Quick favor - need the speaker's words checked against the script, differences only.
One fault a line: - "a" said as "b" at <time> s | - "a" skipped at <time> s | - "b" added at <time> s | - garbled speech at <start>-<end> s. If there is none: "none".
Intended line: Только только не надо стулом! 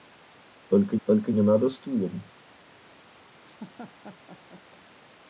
none